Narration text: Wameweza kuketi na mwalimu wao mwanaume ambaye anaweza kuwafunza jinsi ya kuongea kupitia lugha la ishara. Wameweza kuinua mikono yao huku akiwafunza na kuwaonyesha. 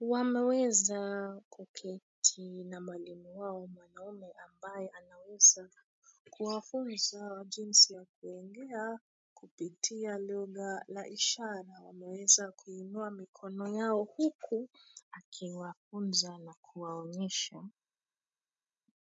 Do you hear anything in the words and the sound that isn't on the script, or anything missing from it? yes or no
no